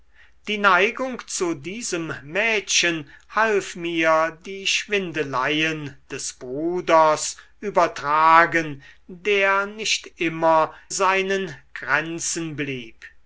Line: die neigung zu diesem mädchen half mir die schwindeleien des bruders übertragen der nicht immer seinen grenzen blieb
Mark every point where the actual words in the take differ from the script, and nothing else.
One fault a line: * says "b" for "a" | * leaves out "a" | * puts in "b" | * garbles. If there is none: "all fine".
all fine